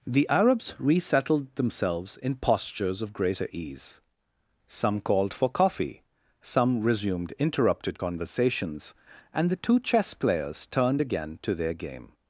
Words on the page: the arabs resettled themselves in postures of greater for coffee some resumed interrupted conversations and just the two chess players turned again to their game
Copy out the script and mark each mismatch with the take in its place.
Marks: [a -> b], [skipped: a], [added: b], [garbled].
the arabs resettled themselves in postures of greater [added: ease some called] for coffee some resumed interrupted conversations and [skipped: just] the two chess players turned again to their game